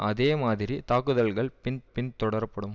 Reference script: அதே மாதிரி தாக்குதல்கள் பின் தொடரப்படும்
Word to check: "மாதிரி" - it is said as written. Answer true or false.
true